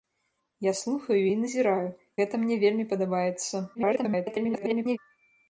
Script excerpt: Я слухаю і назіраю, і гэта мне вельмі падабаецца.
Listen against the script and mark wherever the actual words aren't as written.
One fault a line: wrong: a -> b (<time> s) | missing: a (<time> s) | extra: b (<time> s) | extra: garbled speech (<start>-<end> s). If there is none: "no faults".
missing: і (1.9 s)
extra: garbled speech (3.7-5.0 s)